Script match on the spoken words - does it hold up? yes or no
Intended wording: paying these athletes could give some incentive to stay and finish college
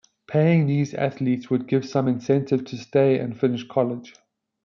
no